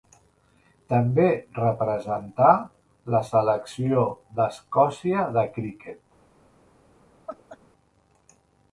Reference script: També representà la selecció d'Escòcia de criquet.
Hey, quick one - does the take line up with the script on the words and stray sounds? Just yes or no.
no